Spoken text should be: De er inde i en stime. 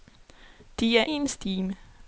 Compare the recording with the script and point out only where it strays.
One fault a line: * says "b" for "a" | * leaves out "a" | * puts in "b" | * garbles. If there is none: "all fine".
* leaves out "inde"